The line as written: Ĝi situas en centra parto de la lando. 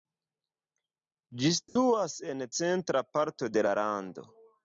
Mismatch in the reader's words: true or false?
false